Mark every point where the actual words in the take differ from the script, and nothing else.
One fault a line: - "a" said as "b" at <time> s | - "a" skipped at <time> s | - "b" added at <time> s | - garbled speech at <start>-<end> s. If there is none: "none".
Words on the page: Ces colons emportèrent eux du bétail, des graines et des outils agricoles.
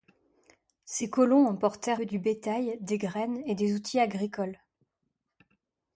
none